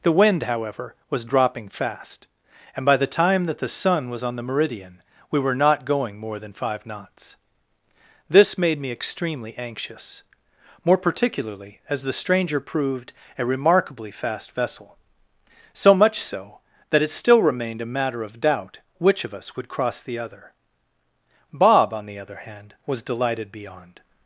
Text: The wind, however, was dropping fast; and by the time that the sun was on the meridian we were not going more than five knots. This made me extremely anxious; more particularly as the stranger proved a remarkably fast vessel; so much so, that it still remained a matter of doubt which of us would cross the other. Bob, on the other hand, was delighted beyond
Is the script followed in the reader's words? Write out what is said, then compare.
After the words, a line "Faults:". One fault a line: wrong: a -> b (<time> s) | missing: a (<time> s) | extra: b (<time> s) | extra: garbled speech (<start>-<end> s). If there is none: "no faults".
The wind, however, was dropping fast; and by the time that the sun was on the meridian we were not going more than five knots. This made me extremely anxious; more particularly as the stranger proved a remarkably fast vessel; so much so, that it still remained a matter of doubt which of us would cross the other. Bob, on the other hand, was delighted beyond
Faults:
no faults